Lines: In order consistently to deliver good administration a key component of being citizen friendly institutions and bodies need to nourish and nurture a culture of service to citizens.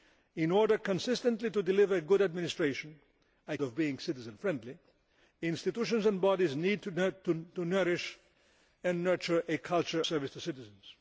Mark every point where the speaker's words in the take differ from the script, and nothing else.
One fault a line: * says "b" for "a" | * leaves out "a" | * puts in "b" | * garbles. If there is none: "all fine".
* leaves out "key component"
* leaves out "of"